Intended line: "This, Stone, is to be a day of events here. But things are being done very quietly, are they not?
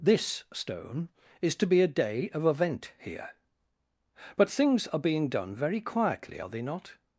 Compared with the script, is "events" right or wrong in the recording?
wrong